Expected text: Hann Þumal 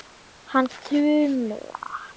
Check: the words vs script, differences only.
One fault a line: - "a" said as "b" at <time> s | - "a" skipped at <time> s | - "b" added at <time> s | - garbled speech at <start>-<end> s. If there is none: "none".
none